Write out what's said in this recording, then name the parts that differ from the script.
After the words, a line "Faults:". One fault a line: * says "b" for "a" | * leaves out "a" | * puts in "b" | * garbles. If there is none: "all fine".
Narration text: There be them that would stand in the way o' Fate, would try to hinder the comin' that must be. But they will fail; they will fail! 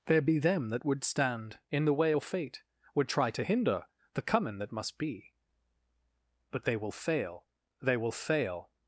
There be them that would stand in the way o' Fate, would try to hinder the comin' that must be. But they will fail; they will fail!
Faults:
all fine